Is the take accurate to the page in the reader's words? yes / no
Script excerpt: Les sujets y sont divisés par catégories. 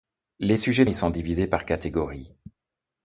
yes